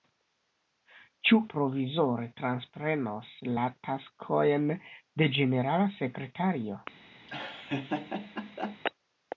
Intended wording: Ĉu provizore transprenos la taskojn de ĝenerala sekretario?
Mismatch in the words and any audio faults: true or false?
true